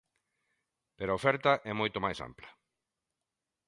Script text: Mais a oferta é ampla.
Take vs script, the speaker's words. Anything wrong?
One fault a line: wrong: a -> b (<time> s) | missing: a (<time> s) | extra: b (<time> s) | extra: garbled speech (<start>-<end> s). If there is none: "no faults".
wrong: Mais -> Pero (1.0 s)
extra: moito máis (1.8 s)